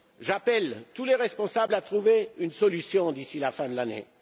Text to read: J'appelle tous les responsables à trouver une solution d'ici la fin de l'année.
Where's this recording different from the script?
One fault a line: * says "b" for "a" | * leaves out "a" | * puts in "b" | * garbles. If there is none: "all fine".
all fine